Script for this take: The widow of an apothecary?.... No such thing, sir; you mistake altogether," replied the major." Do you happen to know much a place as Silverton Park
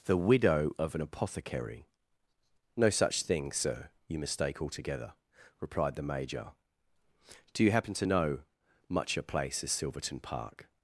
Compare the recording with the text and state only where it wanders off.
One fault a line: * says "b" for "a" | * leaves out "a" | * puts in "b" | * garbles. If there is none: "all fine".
all fine